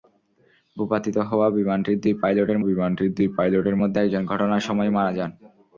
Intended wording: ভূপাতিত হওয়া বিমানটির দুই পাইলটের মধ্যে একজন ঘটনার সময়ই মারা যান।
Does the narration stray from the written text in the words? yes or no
yes